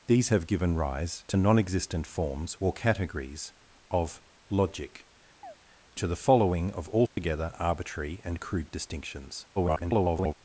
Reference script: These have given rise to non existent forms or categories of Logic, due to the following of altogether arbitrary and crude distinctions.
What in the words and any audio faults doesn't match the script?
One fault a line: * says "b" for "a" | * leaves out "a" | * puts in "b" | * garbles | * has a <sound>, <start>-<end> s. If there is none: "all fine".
* leaves out "due"
* has a chirp, 5.4-5.6 s
* has a dropout, 7.1-7.2 s
* garbles